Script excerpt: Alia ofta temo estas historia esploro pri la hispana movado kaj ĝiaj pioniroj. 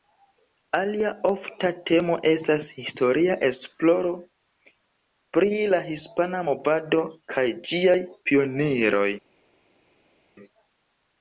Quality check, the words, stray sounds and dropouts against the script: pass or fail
pass